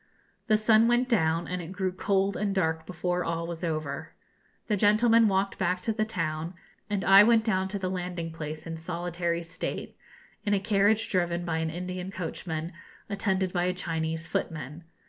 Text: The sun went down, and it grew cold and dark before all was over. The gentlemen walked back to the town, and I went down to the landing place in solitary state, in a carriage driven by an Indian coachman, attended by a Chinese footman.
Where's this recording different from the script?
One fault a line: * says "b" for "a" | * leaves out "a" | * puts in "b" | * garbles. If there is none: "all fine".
all fine